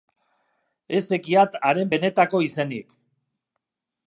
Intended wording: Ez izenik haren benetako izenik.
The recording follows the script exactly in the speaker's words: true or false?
false